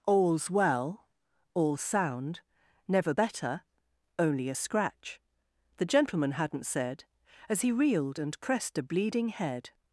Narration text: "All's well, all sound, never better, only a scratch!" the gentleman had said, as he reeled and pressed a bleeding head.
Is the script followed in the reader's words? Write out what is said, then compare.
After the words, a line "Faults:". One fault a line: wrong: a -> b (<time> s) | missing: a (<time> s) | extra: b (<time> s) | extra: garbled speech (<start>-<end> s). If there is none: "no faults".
"All's well, all sound, never better, only a scratch!" the gentleman hadn't said, as he reeled and pressed a bleeding head.
Faults:
wrong: had -> hadn't (6.3 s)